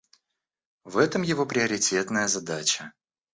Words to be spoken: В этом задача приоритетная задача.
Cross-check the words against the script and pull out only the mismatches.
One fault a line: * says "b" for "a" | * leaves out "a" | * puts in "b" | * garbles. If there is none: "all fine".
* says "его" for "задача"